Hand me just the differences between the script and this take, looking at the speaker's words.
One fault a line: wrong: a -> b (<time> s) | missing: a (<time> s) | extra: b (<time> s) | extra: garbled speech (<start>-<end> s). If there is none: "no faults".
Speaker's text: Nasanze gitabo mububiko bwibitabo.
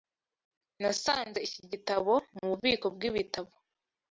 extra: iki (1.5 s)